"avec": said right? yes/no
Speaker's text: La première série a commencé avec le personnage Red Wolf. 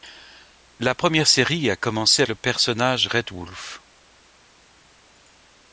no